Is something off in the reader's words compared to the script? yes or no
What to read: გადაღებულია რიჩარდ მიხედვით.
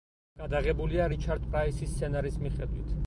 yes